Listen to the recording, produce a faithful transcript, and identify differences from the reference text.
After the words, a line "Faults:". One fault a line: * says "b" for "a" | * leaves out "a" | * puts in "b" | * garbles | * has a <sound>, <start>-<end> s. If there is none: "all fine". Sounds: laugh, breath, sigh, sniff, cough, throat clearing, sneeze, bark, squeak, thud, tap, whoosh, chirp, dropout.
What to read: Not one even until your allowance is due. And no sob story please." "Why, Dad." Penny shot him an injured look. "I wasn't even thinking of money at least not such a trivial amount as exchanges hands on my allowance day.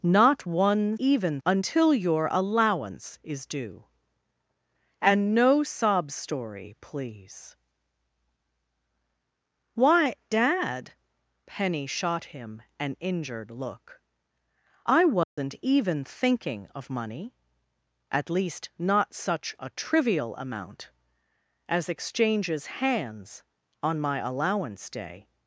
Not one even until your allowance is due. And no sob story please." "Why, Dad." Penny shot him an injured look. "I wasn't even thinking of money at least not such a trivial amount as exchanges hands on my allowance day.
Faults:
* has a dropout, 15.2-15.4 s